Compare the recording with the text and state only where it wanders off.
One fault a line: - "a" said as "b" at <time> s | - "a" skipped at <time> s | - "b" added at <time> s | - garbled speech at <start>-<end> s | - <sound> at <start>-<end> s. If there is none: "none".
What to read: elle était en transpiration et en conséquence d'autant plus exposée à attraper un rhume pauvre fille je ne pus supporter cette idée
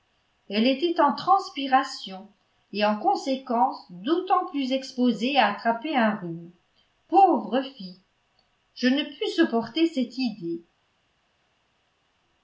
none